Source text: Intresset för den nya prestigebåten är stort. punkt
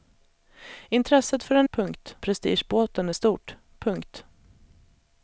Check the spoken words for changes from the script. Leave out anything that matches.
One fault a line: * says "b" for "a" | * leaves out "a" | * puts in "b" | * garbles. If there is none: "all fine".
* says "punkt" for "nya"